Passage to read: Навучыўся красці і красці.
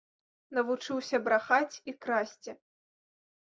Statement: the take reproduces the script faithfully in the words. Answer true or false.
false